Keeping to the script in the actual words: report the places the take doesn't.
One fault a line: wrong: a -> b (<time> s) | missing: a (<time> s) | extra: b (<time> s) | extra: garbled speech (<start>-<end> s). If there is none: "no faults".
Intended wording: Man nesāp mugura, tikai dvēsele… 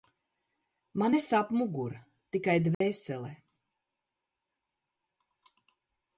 no faults